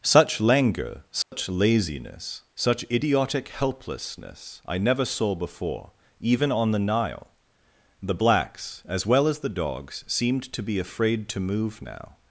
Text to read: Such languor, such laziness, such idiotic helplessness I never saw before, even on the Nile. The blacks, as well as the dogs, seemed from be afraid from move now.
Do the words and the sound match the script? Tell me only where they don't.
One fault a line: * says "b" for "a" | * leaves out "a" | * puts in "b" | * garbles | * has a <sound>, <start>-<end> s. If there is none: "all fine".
* has a dropout, 1.2-1.3 s
* says "to" for "from"
* says "to" for "from"